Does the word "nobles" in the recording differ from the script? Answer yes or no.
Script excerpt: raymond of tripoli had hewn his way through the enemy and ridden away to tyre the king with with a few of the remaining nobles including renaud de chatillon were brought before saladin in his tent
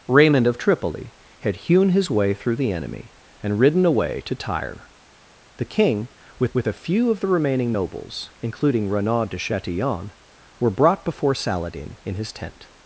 no